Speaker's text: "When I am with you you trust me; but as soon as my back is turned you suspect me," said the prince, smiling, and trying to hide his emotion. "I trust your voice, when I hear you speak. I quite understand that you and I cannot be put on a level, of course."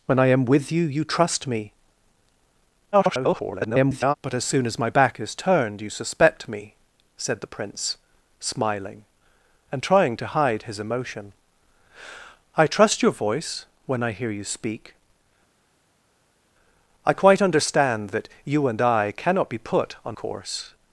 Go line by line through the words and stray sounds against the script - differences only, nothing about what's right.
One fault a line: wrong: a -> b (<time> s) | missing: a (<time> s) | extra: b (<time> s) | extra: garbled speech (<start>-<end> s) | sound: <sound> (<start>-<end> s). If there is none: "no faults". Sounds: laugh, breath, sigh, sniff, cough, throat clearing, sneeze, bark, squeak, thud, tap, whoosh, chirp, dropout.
extra: garbled speech (2.9-4.1 s)
missing: a level of (20.2 s)